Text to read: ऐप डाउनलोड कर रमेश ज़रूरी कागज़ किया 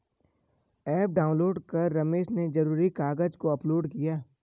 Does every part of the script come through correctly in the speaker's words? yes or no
no